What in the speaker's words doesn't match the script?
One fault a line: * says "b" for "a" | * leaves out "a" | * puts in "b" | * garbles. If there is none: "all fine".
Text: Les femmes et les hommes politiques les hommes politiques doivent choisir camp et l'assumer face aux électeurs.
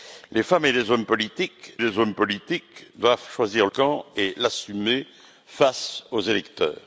all fine